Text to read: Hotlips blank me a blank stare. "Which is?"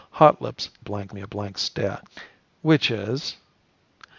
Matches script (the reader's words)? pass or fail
pass